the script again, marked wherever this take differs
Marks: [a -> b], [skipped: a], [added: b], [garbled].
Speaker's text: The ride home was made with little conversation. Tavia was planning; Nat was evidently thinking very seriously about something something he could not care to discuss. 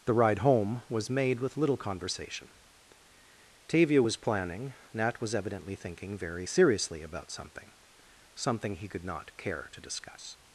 The ride home was made with little conversation. Tavia was planning; Nat was evidently thinking very seriously about something something he could not care to discuss.